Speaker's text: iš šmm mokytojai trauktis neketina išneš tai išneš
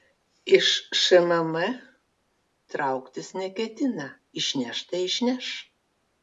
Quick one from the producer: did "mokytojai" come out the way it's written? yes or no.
no